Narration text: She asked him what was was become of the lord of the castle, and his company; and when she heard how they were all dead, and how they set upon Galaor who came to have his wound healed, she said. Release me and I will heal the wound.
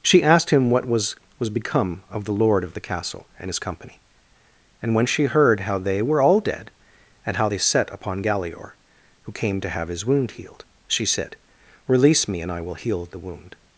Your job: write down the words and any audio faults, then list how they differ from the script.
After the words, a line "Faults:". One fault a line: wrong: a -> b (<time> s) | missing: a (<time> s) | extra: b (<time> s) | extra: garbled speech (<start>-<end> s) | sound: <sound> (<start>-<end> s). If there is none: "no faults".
She asked him what was was become of the lord of the castle, and his company; and when she heard how they were all dead, and how they set upon Galaor who came to have his wound healed, she said. Release me and I will heal the wound.
Faults:
no faults